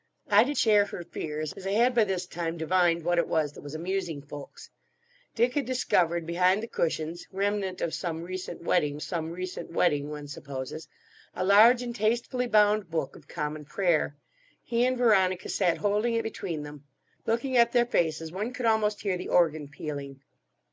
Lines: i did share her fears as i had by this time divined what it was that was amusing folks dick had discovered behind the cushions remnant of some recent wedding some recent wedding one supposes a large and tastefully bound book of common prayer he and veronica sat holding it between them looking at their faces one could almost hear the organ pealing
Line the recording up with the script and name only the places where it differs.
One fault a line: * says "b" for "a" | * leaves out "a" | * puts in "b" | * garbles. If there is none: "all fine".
all fine